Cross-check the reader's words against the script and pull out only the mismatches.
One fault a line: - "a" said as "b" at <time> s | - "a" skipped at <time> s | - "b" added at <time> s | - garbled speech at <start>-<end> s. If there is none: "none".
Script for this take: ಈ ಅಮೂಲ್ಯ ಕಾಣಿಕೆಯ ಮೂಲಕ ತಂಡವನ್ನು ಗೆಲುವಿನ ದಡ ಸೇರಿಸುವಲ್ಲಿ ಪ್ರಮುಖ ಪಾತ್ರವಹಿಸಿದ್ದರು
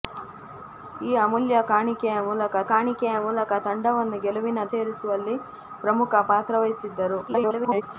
- "ಕಾಣಿಕೆಯ ಮೂಲಕ" added at 2.7 s
- "ದಡ" skipped at 4.6 s
- garbled speech at 7.3-7.8 s